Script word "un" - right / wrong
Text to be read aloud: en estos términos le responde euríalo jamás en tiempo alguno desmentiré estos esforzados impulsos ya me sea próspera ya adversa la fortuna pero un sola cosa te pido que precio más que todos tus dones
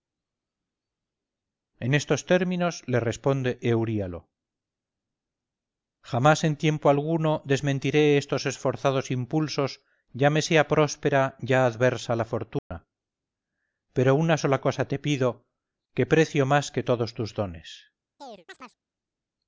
wrong